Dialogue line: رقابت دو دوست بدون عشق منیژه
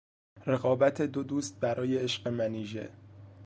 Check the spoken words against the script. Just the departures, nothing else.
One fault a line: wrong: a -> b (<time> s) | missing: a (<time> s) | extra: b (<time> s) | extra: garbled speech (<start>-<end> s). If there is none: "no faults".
wrong: بدون -> برای (1.6 s)